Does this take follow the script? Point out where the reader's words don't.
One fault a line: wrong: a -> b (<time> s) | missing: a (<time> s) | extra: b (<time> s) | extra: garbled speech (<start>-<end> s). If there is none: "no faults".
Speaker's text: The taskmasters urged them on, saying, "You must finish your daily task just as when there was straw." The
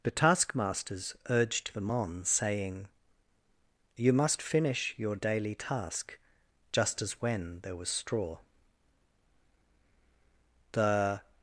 no faults